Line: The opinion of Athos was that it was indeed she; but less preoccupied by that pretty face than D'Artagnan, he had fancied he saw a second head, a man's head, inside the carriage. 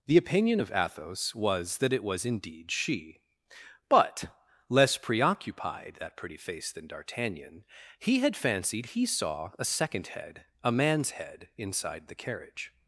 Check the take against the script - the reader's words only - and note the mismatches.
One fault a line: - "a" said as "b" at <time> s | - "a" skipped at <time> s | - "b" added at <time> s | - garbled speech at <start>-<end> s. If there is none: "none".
- "by" skipped at 6.0 s